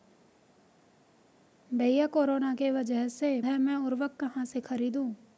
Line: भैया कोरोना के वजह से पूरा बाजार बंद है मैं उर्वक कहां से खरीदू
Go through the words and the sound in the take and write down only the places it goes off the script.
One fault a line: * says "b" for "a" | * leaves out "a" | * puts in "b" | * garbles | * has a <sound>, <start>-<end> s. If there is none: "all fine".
* leaves out "पूरा बाजार बंद"